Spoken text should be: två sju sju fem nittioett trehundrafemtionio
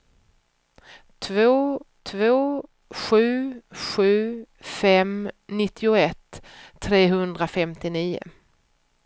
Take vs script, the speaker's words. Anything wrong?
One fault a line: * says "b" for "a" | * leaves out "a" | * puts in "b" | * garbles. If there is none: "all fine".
* puts in "två"